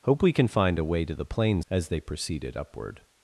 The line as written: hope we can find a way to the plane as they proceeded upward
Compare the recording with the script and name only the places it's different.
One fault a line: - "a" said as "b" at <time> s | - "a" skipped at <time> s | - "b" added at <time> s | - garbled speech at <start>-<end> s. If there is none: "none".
none